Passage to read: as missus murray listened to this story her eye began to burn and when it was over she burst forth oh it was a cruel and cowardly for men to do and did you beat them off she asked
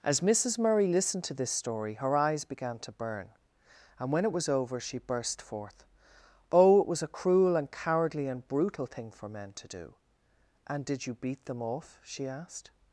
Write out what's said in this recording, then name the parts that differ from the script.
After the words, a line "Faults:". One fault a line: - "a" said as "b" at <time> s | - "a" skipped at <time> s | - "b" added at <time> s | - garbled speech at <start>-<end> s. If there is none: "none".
as missus murray listened to this story her eyes began to burn and when it was over she burst forth oh it was a cruel and cowardly and brutal thing for men to do and did you beat them off she asked
Faults:
- "eye" said as "eyes" at 2.2 s
- "and brutal thing" added at 8.3 s